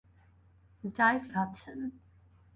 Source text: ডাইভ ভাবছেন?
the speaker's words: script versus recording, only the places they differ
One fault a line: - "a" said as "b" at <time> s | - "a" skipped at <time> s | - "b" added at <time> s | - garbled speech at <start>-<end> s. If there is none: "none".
none